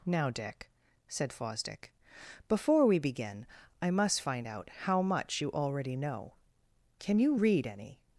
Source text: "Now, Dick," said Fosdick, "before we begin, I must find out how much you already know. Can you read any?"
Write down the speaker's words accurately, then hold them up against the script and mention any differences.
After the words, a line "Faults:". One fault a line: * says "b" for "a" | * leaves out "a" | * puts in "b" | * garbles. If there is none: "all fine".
"Now, Dick," said Fosdick, "before we begin, I must find out how much you already know. Can you read any?"
Faults:
all fine